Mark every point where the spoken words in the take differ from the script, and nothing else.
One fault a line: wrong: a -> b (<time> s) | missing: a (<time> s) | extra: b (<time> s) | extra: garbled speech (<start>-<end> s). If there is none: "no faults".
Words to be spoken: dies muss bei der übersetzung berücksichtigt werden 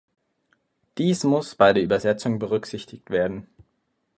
no faults